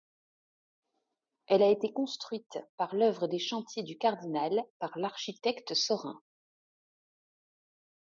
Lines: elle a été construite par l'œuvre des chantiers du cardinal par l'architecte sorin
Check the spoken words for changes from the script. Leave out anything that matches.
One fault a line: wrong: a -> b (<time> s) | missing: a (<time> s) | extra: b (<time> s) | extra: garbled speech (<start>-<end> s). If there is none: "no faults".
no faults